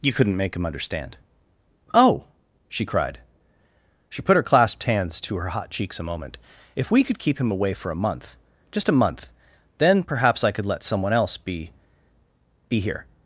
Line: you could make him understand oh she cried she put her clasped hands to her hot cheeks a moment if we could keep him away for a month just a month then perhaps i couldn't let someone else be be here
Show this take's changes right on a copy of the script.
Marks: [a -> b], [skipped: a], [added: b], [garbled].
you [could -> couldn't] make him understand oh she cried she put her clasped hands to her hot cheeks a moment if we could keep him away for a month just a month then perhaps i [couldn't -> could] let someone else be be here